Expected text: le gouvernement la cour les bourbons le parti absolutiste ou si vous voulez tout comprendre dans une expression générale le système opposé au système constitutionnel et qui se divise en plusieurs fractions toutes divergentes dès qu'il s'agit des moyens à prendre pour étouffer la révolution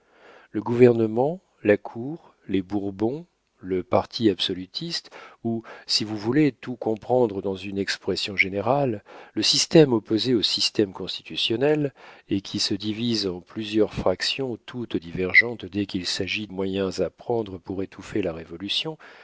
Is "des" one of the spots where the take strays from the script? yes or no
yes